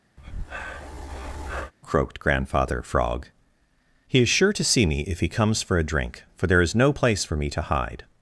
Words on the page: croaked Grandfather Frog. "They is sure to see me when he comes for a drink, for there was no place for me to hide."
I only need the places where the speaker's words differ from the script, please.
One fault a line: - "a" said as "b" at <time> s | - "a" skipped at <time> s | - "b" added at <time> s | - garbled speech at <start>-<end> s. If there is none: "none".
- "They" said as "He" at 4.1 s
- "when" said as "if" at 5.0 s
- "was" said as "is" at 6.6 s